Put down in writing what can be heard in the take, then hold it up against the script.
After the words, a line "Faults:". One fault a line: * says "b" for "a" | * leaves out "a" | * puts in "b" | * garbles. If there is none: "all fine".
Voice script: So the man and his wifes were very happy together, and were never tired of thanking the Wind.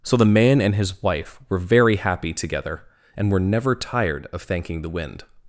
So the man and his wife were very happy together, and were never tired of thanking the Wind.
Faults:
* says "wife" for "wifes"